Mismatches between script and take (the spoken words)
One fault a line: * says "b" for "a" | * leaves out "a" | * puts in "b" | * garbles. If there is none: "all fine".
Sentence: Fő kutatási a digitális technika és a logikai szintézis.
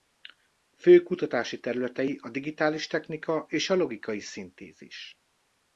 * puts in "területei"